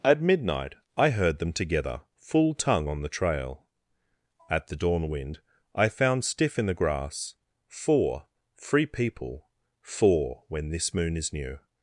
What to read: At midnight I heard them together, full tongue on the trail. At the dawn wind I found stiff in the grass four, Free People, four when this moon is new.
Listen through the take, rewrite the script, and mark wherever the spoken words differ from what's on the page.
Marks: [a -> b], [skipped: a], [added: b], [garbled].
At midnight I heard them together, full tongue on the trail. At the dawn wind I found stiff in the grass four, Free People, four when this moon is new.